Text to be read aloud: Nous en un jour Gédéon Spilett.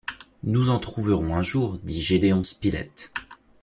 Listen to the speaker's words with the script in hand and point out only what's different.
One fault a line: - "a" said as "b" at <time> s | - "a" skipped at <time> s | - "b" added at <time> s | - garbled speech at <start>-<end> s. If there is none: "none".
- "trouverons" added at 0.8 s
- "dit" added at 1.8 s